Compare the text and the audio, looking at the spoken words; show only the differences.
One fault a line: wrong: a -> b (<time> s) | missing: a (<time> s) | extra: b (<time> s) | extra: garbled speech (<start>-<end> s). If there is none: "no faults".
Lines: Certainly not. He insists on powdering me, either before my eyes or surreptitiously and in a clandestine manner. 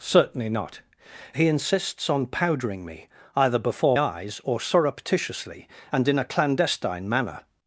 missing: my (4.0 s)